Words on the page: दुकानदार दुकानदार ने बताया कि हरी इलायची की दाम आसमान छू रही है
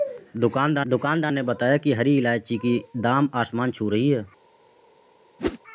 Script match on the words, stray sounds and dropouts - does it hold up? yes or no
no